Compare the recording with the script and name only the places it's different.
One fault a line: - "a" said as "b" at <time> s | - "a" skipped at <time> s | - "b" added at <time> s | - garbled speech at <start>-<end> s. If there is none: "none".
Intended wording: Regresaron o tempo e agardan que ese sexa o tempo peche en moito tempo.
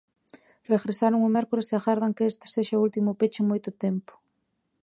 - "tempo" said as "mércores" at 1.3 s
- "ese" said as "este" at 2.3 s
- "tempo" said as "último" at 2.9 s